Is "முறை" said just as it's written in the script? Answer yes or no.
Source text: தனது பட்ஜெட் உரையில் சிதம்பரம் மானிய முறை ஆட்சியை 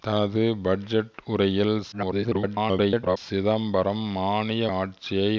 no